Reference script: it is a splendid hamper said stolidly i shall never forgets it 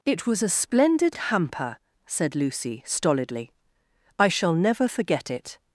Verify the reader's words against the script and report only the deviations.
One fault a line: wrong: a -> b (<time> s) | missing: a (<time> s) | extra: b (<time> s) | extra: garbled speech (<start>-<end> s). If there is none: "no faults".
wrong: is -> was (0.2 s)
extra: lucy (2.4 s)
wrong: forgets -> forget (4.8 s)